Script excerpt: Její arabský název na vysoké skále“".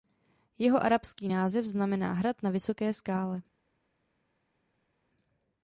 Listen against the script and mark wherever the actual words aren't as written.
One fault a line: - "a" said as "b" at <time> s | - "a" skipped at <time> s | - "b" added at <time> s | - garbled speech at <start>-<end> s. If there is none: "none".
- "Její" said as "Jeho" at 0.6 s
- "znamená hrad" added at 1.7 s